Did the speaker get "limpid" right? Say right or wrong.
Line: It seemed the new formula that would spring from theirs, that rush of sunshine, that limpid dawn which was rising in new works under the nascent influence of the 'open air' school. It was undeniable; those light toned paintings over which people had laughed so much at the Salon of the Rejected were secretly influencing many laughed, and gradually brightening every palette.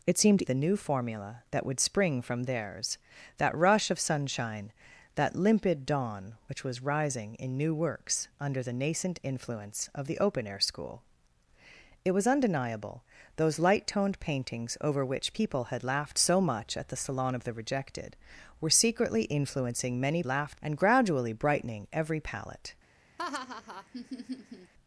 right